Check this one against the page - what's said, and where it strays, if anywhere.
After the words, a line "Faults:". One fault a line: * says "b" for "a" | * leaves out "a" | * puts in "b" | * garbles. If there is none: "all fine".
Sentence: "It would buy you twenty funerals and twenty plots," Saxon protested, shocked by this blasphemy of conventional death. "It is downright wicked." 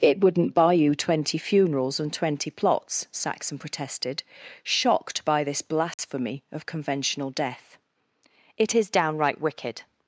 "It wouldn't buy you twenty funerals and twenty plots," Saxon protested, shocked by this blasphemy of conventional death. "It is downright wicked."
Faults:
* says "wouldn't" for "would"